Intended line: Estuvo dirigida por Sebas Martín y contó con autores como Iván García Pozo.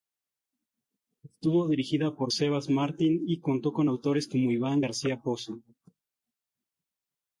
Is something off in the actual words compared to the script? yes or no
no